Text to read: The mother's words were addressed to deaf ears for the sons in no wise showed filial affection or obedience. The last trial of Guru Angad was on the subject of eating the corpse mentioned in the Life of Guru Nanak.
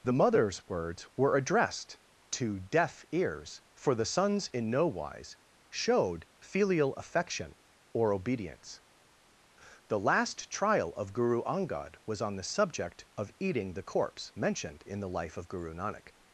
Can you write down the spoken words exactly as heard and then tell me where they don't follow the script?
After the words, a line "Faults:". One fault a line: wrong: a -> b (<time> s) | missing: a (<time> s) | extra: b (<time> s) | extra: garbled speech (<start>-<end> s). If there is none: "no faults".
The mother's words were addressed to deaf ears for the sons in no wise showed filial affection or obedience. The last trial of Guru Angad was on the subject of eating the corpse mentioned in the Life of Guru Nanak.
Faults:
no faults